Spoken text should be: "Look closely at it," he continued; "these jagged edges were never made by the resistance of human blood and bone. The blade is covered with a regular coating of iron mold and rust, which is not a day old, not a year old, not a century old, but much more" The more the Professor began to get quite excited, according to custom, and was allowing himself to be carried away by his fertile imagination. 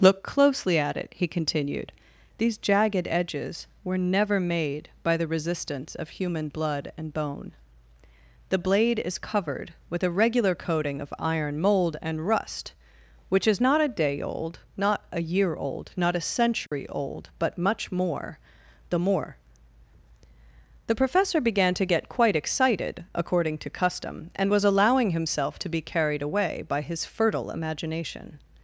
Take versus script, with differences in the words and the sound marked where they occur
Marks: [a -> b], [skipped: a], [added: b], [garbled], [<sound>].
"Look closely at it," he continued; "these jagged edges were never made by the resistance of human blood and bone. The blade is covered with a regular coating of iron mold and rust, which is not a day old, not a year old, not a century [dropout] old, but much more" The more the Professor began to get quite excited, according to custom, and was allowing himself to be carried away by his fertile imagination.